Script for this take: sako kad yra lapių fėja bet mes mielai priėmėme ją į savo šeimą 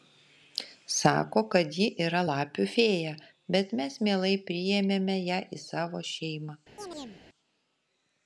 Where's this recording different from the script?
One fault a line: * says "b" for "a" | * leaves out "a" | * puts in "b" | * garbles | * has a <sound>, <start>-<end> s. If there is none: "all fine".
* puts in "ji"
* has a chirp, 6.8-7.2 s